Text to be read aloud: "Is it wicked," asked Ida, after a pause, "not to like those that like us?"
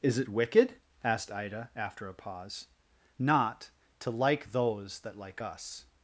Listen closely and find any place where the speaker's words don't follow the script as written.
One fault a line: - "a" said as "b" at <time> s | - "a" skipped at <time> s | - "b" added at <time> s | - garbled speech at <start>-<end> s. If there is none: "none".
none